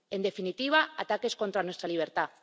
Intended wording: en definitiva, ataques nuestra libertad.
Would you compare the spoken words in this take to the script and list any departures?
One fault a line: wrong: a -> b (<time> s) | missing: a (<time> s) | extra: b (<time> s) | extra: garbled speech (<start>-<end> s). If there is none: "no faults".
extra: contra (1.4 s)